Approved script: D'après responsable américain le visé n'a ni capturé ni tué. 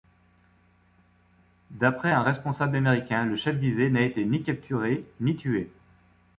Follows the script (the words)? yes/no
no